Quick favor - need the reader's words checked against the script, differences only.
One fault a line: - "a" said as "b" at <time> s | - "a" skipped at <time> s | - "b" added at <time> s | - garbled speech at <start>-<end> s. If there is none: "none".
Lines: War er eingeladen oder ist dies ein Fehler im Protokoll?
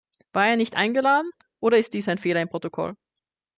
- "nicht" added at 0.6 s